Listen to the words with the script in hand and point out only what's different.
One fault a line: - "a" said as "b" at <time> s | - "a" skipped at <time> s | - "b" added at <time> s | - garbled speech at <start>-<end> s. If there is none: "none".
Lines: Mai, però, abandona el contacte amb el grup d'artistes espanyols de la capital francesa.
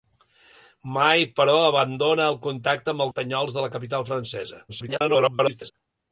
- "grup d'artistes" skipped at 3.1 s
- garbled speech at 4.7-5.7 s